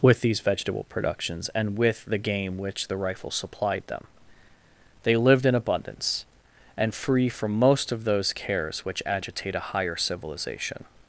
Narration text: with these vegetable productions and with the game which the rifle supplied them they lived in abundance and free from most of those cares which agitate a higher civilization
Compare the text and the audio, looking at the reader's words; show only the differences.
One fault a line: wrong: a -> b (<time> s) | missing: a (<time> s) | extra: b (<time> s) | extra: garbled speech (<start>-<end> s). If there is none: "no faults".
no faults